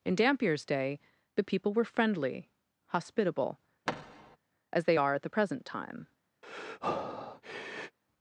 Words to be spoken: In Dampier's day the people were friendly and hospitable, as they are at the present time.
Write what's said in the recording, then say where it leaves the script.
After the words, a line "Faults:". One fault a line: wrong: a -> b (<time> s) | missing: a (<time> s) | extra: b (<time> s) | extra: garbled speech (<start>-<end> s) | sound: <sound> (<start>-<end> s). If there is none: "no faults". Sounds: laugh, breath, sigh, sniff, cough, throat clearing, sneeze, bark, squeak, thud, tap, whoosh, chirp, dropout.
In Dampier's day the people were friendly hospitable, as they are at the present time.
Faults:
missing: and (2.5 s)
sound: thud (3.9-4.4 s)
sound: breath (6.4-8.0 s)